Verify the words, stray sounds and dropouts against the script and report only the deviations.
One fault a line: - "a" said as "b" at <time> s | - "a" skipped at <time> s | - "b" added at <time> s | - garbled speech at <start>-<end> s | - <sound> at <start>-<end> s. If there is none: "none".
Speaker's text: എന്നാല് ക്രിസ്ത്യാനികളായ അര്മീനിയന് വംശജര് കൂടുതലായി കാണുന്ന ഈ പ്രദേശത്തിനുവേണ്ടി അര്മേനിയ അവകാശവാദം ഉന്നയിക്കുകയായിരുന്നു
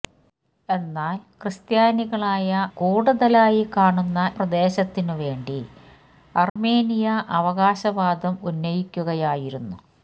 - "അര്മീനിയന് വംശജര്" skipped at 2.5 s
- "ഈ" skipped at 4.2 s
- dropout at 6.5-6.6 s